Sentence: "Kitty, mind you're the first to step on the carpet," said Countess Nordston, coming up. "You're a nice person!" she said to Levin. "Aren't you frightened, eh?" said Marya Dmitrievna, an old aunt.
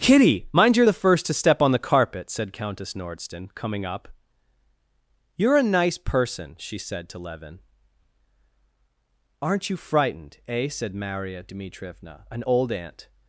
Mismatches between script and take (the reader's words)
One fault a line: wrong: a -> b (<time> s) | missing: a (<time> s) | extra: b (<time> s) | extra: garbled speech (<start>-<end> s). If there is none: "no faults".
no faults